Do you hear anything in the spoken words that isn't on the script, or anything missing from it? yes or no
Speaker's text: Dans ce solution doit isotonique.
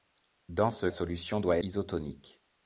no